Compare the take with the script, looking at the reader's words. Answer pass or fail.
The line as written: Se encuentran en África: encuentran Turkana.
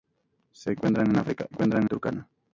pass